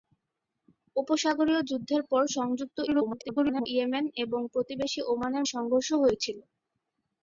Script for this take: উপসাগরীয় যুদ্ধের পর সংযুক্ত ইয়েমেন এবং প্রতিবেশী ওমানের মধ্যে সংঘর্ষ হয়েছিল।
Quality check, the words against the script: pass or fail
fail